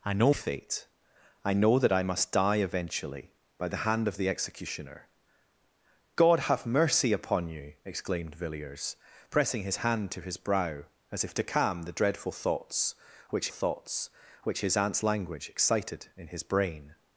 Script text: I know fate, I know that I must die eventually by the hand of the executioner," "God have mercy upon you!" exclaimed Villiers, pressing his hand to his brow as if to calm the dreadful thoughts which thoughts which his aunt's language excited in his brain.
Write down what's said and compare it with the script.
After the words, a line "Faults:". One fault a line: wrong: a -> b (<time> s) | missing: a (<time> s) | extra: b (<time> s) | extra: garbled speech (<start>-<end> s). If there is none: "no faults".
I know fate, I know that I must die eventually by the hand of the executioner," "God have mercy upon you!" exclaimed Villiers, pressing his hand to his brow as if to calm the dreadful thoughts which thoughts which his aunt's language excited in his brain.
Faults:
no faults